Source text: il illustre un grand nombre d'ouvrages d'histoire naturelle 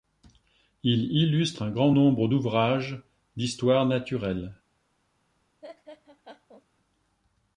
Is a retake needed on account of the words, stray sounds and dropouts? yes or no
yes